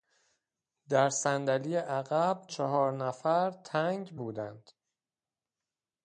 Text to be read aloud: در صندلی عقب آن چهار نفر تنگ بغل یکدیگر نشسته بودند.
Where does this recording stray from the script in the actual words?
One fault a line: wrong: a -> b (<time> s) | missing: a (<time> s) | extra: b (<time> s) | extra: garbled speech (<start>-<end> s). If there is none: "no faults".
missing: آن (2.5 s)
missing: بغل یکدیگر نشسته (4.2 s)